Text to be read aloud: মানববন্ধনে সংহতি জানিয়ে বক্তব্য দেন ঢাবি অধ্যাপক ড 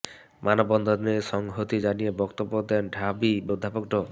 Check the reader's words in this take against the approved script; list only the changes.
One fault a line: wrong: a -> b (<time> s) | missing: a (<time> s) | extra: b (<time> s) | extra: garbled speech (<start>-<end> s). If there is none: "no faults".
no faults